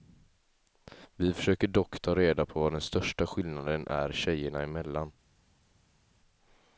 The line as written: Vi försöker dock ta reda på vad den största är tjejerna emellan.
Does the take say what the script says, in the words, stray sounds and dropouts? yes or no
no